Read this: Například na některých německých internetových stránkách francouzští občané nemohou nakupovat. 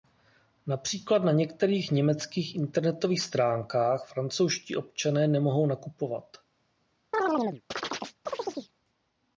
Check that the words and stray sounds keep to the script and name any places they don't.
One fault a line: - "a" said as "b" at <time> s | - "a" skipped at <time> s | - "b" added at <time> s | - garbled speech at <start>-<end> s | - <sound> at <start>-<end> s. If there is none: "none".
- chirp at 7.1-8.7 s